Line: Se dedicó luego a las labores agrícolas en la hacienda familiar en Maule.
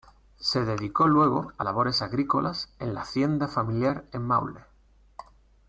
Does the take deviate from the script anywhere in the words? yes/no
yes